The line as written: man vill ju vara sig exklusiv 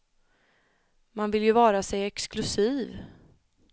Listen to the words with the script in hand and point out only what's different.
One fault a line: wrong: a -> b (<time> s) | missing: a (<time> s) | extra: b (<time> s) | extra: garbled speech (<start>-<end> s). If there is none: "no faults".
no faults